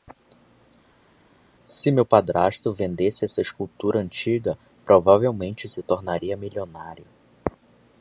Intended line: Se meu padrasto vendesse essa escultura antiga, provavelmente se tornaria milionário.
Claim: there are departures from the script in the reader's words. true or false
false